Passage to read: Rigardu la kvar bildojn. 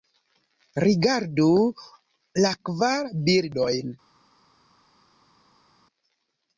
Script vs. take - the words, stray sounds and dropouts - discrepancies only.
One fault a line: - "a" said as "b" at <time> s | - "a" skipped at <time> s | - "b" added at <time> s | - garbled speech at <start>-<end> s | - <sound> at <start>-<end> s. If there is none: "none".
none